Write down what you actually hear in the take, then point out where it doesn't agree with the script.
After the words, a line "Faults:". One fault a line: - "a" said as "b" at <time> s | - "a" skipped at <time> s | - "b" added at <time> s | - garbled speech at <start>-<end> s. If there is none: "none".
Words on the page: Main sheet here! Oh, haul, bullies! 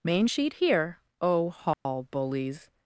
Main sheet here! Oh, haul, bullies!
Faults:
none